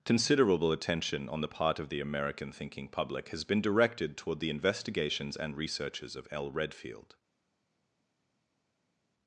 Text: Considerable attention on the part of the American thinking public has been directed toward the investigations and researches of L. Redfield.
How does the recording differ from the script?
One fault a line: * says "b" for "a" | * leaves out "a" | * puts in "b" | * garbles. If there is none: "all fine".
all fine